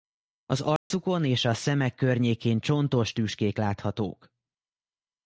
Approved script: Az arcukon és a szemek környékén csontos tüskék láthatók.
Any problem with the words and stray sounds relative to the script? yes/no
yes